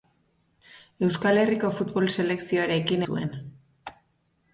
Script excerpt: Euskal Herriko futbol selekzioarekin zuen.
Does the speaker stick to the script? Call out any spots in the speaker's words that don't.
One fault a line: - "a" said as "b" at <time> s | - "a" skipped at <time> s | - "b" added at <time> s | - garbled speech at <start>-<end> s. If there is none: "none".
none